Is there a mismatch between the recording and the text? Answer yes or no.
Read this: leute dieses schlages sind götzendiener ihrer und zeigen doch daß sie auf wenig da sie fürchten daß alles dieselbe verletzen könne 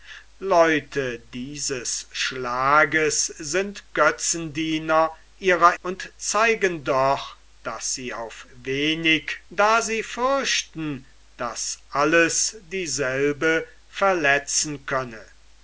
no